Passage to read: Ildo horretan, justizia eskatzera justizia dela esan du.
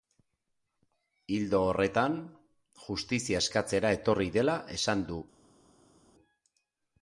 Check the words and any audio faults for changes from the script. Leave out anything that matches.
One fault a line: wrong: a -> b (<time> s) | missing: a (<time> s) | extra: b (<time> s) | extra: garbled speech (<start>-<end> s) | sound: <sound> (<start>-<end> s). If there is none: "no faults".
wrong: justizia -> etorri (4.0 s)